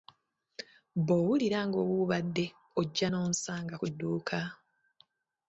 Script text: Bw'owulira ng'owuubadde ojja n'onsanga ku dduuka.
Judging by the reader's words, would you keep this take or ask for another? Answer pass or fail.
pass